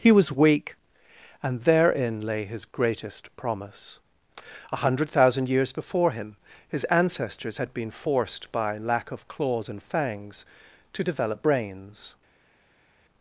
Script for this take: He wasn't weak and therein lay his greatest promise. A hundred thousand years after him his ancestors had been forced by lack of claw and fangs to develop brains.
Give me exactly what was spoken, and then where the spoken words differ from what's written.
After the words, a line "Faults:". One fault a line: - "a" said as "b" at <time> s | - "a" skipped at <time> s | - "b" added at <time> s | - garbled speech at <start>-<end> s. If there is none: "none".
He was weak and therein lay his greatest promise. A hundred thousand years before him his ancestors had been forced by lack of claws and fangs to develop brains.
Faults:
- "wasn't" said as "was" at 0.1 s
- "after" said as "before" at 5.7 s
- "claw" said as "claws" at 9.3 s